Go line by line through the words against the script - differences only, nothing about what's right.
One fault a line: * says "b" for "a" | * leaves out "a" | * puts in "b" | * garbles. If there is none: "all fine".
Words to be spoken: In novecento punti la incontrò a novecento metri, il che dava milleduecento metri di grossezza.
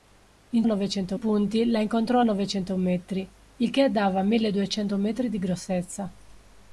all fine